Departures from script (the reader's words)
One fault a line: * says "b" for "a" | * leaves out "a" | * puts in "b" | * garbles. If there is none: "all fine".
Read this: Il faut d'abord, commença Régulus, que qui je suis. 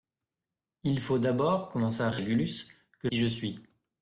all fine